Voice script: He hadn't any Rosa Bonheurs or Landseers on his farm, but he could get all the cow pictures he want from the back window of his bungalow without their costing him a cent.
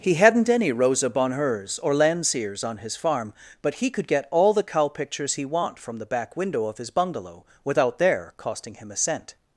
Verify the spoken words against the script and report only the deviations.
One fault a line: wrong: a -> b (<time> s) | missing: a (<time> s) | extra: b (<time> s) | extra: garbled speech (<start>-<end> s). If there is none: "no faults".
no faults